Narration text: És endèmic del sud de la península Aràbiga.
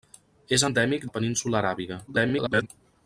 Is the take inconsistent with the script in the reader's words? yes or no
yes